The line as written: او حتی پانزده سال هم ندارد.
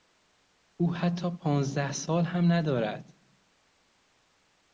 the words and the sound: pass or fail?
pass